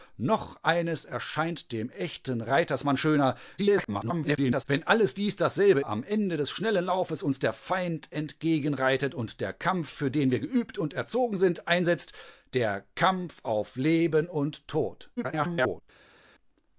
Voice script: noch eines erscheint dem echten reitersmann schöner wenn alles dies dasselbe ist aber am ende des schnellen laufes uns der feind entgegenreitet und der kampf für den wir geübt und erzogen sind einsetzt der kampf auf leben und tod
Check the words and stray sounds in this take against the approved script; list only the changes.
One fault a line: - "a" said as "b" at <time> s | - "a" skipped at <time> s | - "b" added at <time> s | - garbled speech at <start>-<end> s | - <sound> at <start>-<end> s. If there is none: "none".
- garbled speech at 3.6-4.6 s
- "ist aber" skipped at 5.8 s
- garbled speech at 15.2-15.8 s